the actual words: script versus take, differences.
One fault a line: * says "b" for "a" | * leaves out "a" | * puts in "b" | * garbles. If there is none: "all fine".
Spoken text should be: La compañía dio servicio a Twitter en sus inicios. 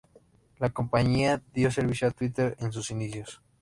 all fine